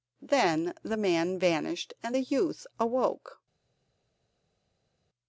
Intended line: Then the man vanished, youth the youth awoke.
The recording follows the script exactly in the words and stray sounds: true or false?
false